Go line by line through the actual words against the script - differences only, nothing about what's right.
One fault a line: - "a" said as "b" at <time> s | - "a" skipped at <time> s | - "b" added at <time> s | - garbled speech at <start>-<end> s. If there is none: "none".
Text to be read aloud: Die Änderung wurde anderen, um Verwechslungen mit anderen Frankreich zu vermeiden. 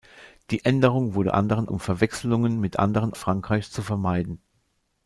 none